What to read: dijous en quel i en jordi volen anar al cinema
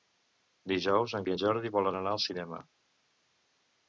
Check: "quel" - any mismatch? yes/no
yes